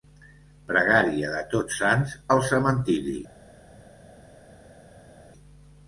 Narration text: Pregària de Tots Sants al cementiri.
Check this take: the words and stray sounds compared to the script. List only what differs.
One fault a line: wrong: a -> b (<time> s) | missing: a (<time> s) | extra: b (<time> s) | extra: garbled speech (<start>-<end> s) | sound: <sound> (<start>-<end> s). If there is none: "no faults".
no faults